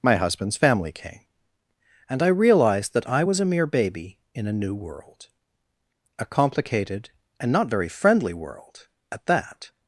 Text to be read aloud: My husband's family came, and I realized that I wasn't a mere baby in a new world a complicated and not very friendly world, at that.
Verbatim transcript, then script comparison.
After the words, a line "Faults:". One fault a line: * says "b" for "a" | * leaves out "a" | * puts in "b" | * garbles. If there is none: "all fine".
My husband's family came, and I realized that I was a mere baby in a new world a complicated and not very friendly world, at that.
Faults:
* says "was" for "wasn't"